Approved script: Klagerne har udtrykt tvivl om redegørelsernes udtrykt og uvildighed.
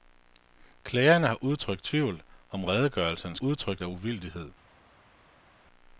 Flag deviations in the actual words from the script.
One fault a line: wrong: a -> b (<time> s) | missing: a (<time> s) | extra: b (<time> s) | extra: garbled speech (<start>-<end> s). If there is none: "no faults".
no faults